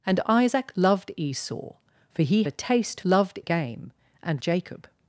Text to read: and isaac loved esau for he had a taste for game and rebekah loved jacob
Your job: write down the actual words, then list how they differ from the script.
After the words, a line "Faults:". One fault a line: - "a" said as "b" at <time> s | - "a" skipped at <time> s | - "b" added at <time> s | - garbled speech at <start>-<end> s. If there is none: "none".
and isaac loved esau for he a taste loved game and jacob
Faults:
- "had" skipped at 2.4 s
- "for" said as "loved" at 3.0 s
- "rebekah loved" skipped at 4.4 s